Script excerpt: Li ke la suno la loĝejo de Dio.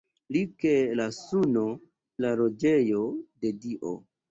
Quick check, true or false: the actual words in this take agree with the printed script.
true